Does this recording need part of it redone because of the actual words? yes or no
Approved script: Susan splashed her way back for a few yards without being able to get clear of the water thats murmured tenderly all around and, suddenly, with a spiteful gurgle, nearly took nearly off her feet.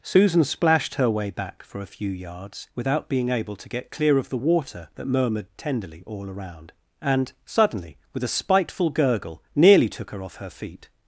yes